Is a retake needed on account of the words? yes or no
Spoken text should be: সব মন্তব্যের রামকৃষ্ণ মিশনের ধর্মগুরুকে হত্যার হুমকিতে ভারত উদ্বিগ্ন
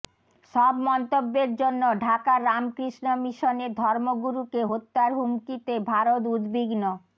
yes